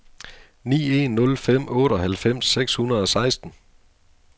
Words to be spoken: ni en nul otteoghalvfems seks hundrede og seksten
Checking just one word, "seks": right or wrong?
right